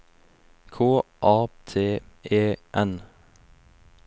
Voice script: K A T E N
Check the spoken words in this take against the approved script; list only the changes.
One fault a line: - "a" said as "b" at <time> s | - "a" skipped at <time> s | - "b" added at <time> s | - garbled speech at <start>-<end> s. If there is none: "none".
none